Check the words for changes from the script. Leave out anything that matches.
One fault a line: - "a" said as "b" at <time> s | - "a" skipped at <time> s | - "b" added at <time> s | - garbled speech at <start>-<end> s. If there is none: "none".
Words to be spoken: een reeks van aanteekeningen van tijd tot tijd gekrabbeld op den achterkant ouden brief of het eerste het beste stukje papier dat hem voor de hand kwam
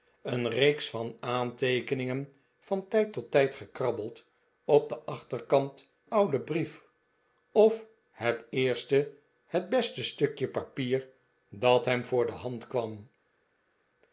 none